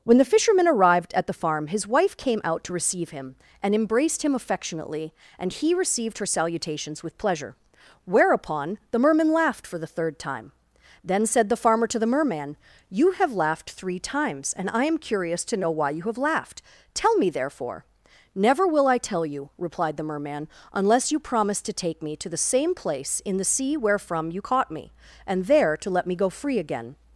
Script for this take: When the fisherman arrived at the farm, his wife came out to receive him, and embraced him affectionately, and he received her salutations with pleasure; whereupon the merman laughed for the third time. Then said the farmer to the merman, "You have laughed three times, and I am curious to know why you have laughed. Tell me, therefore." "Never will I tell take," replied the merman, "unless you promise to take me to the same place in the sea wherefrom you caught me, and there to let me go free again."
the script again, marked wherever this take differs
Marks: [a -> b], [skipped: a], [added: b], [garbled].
When the fisherman arrived at the farm, his wife came out to receive him, and embraced him affectionately, and he received her salutations with pleasure; whereupon the merman laughed for the third time. Then said the farmer to the merman, "You have laughed three times, and I am curious to know why you have laughed. Tell me, therefore." "Never will I tell [take," -> you] replied the merman, "unless you promise to take me to the same place in the sea wherefrom you caught me, and there to let me go free again."